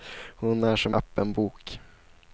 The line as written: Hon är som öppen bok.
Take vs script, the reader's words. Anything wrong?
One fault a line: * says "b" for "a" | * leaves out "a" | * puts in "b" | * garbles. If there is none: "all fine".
all fine